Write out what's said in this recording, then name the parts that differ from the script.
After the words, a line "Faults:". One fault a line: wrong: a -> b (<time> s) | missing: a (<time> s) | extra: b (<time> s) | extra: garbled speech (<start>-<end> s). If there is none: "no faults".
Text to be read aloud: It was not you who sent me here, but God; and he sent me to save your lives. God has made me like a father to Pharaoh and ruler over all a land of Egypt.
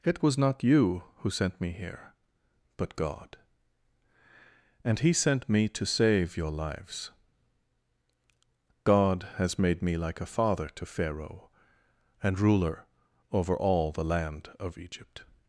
It was not you who sent me here, but God; and he sent me to save your lives. God has made me like a father to Pharaoh and ruler over all the land of Egypt.
Faults:
wrong: a -> the (13.9 s)